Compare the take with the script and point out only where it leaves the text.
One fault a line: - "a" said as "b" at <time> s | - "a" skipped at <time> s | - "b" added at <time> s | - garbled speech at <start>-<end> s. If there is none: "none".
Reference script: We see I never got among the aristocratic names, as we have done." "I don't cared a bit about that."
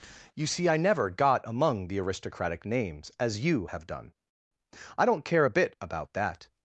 - "We" said as "You" at 0.3 s
- "we" said as "you" at 3.5 s
- "cared" said as "care" at 5.2 s